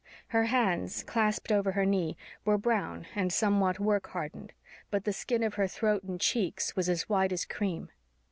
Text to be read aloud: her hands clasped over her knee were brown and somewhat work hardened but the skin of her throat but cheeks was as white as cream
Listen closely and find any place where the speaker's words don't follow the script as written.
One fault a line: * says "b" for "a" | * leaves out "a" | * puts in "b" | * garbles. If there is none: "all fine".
* says "and" for "but"